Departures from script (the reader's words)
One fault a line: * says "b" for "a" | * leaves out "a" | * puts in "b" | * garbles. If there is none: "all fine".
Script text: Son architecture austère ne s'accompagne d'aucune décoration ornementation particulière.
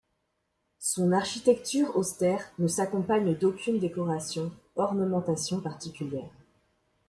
all fine